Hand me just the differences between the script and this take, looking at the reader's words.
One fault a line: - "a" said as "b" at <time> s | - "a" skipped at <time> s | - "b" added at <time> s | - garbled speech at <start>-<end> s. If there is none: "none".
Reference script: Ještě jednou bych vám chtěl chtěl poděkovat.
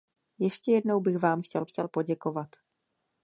none